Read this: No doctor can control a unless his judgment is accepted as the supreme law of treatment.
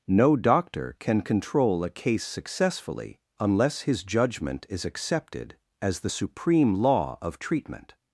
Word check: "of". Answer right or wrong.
right